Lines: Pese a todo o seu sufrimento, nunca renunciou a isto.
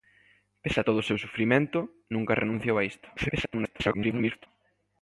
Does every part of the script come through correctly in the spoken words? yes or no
no